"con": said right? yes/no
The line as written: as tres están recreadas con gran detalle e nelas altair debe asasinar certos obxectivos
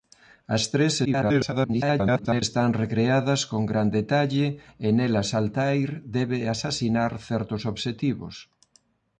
yes